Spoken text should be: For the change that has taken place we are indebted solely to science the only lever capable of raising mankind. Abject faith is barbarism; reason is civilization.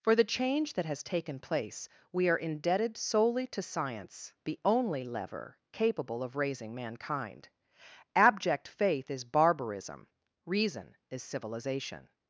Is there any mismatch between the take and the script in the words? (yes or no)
no